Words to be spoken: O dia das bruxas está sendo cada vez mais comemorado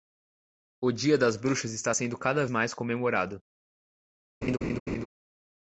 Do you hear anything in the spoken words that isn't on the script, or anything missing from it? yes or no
yes